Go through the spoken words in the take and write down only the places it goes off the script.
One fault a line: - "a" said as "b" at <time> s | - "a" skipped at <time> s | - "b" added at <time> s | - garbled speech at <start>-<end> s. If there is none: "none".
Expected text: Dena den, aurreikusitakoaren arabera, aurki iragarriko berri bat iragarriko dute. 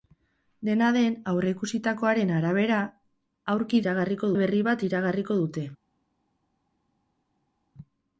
none